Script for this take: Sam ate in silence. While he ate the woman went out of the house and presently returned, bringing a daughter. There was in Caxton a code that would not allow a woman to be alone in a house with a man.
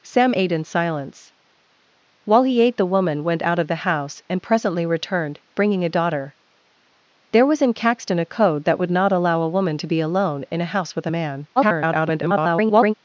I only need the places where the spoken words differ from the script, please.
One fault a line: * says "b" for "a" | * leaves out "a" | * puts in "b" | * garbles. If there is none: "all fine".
* garbles